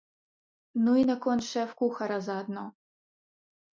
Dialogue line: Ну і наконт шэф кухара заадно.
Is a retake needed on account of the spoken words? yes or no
no